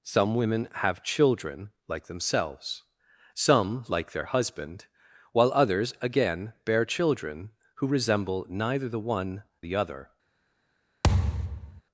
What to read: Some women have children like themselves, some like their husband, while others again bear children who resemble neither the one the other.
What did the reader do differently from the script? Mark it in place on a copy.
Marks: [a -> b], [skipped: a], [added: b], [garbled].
Some women have children like themselves, some like their husband, while others again bear children who resemble neither the one the other.